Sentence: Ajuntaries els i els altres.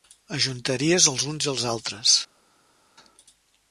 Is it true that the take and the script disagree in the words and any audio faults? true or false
true